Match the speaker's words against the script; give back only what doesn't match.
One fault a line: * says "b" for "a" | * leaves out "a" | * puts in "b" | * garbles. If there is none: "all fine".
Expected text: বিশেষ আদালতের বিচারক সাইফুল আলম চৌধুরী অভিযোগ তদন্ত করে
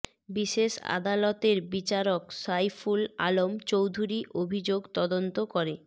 all fine